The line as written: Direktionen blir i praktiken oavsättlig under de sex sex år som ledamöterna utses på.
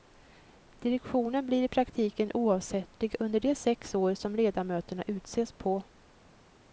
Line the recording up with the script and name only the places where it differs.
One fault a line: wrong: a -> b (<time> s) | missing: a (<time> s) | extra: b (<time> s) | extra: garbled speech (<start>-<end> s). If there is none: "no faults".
missing: sex (4.0 s)